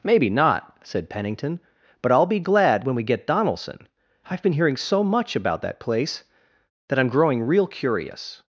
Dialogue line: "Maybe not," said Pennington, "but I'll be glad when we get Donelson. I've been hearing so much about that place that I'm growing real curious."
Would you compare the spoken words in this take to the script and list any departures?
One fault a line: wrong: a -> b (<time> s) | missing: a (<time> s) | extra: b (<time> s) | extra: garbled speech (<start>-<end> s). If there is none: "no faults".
no faults